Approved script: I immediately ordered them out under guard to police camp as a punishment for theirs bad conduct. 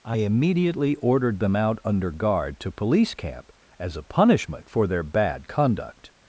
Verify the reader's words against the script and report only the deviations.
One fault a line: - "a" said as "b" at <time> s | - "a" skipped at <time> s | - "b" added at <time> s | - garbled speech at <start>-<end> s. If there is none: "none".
- "theirs" said as "their" at 4.9 s